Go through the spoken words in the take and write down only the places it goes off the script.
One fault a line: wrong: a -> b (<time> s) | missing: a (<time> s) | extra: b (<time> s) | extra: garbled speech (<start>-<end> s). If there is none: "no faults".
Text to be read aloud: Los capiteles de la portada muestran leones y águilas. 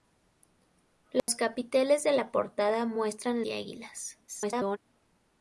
missing: leones (3.4 s)
extra: garbled speech (4.3-4.8 s)